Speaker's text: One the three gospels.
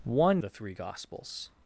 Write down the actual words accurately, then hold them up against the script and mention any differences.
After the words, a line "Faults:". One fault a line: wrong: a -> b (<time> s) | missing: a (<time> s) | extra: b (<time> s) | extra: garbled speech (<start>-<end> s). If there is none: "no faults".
One the three gospels.
Faults:
no faults